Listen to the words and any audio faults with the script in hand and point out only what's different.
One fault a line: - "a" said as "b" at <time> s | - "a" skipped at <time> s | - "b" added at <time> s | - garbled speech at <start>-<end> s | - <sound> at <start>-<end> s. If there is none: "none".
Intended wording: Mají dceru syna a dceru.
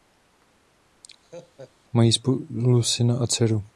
- laugh at 1.2-1.7 s
- "dceru" said as "spolu" at 2.1 s